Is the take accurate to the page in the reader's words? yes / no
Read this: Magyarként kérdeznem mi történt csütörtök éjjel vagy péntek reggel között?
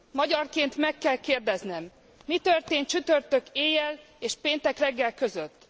no